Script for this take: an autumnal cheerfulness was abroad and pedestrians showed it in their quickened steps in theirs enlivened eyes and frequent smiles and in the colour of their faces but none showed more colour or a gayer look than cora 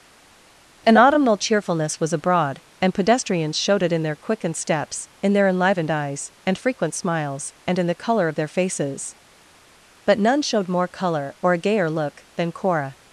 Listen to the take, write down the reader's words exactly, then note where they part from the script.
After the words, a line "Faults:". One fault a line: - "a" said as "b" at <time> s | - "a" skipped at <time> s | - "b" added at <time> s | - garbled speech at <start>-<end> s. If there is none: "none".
an autumnal cheerfulness was abroad and pedestrians showed it in their quickened steps in their enlivened eyes and frequent smiles and in the colour of their faces but none showed more colour or a gayer look than cora
Faults:
- "theirs" said as "their" at 5.3 s